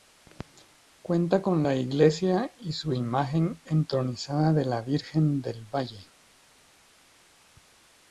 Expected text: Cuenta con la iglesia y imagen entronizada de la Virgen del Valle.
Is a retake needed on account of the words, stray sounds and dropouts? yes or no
yes